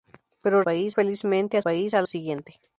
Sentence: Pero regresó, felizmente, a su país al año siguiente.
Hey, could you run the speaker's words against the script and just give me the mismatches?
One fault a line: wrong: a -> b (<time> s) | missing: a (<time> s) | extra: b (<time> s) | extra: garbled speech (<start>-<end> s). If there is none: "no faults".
wrong: regresó -> país (0.6 s)
missing: su (1.6 s)
missing: año (2.1 s)